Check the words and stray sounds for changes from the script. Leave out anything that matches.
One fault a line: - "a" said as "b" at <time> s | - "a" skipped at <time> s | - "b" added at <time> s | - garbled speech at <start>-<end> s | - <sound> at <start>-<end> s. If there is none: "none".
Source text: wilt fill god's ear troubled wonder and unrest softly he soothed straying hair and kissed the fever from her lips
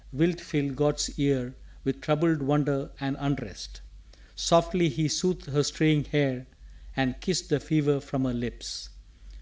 - "with" added at 1.8 s
- "her" added at 5.5 s